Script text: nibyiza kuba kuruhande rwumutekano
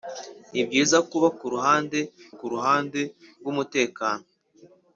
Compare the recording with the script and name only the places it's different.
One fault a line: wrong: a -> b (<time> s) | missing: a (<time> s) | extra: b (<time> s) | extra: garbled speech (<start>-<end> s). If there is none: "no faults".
extra: kuruhande (2.4 s)